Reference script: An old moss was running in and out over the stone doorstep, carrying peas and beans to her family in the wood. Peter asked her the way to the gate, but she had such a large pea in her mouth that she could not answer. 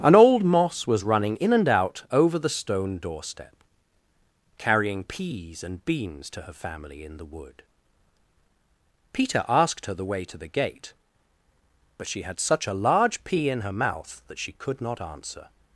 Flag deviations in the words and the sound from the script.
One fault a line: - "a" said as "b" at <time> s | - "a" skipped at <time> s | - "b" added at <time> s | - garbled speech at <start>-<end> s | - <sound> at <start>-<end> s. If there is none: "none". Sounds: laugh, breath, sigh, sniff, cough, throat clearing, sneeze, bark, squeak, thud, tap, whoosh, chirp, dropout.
none